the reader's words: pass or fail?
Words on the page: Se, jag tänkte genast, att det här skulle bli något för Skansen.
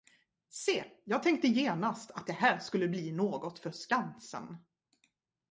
pass